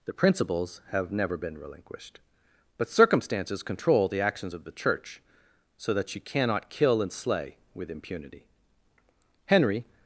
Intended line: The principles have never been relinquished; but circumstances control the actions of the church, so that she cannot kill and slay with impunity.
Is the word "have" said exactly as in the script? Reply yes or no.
yes